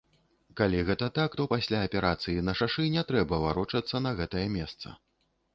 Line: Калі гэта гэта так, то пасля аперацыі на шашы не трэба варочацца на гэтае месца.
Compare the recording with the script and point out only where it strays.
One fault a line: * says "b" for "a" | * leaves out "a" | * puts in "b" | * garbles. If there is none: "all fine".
* leaves out "гэта"